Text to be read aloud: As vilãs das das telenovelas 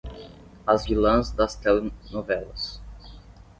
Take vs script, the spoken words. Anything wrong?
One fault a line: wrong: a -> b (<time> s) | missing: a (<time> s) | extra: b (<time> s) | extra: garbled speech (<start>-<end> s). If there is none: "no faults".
missing: das (1.6 s)